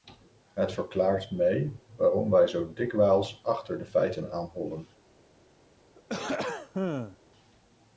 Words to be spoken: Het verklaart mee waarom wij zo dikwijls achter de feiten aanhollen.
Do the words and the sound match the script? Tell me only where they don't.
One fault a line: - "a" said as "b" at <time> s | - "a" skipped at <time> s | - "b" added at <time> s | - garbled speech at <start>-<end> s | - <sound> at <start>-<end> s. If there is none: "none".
- throat clearing at 6.0-7.2 s